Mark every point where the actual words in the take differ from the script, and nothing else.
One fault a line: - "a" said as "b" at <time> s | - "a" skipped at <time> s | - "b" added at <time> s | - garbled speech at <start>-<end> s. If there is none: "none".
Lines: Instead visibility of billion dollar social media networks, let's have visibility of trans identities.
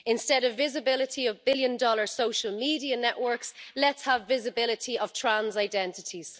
- "of" added at 0.4 s